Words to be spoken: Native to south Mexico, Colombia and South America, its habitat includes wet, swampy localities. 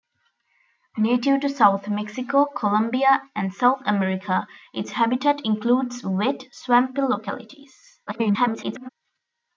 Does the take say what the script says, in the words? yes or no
no